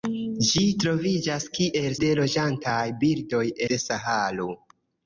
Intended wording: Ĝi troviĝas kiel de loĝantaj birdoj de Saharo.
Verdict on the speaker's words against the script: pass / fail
pass